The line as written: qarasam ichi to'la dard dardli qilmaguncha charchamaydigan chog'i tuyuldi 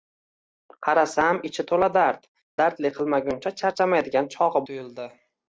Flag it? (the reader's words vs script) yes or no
no